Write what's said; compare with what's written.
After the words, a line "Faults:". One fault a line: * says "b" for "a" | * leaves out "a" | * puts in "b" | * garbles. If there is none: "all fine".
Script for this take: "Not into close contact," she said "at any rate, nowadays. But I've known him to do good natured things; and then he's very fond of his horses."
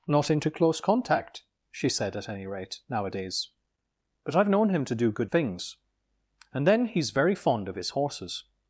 "Not into close contact," she said "at any rate, nowadays. But I've known him to do good things; and then he's very fond of his horses."
Faults:
* leaves out "natured"